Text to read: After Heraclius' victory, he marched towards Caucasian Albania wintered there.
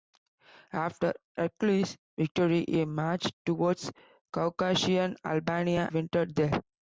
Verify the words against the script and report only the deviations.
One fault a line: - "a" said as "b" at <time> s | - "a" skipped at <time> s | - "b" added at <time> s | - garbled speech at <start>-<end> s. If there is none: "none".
none